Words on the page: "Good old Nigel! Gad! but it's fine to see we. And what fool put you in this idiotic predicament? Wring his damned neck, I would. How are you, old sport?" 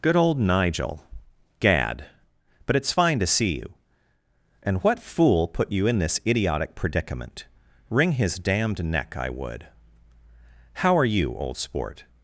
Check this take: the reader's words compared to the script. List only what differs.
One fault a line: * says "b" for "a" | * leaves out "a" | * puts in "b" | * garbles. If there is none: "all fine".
* says "you" for "we"